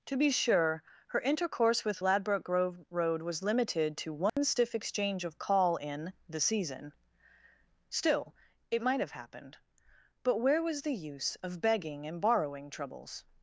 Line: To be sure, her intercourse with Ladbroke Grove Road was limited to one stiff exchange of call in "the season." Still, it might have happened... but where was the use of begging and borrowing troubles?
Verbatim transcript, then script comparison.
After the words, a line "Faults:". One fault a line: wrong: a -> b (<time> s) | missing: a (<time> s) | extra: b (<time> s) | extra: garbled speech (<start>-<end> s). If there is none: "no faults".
To be sure, her intercourse with Ladbroke Grove Road was limited to one stiff exchange of call in "the season." Still, it might have happened... but where was the use of begging and borrowing troubles?
Faults:
no faults